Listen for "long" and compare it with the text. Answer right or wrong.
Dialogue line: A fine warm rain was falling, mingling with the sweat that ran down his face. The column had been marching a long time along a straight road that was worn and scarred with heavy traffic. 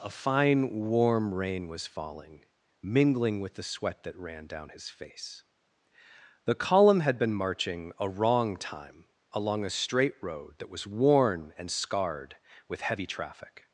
wrong